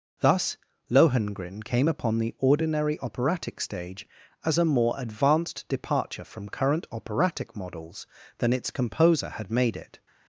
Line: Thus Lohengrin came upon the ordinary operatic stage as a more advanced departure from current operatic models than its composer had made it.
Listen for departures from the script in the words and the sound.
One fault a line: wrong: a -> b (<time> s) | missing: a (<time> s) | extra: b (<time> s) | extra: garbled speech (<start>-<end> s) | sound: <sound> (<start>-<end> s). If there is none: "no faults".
no faults